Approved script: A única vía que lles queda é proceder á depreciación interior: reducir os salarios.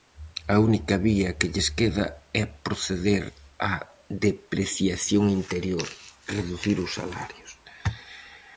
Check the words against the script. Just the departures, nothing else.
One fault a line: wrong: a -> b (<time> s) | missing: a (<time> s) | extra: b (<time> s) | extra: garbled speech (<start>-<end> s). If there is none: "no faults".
no faults